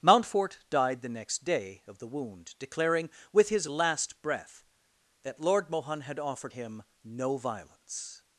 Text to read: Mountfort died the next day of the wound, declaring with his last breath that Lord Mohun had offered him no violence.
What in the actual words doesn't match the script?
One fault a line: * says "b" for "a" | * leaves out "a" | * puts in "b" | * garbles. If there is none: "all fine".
all fine